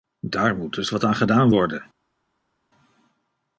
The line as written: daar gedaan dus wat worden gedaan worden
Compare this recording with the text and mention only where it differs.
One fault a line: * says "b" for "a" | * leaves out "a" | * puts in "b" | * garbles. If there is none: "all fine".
* says "moet" for "gedaan"
* says "aan" for "worden"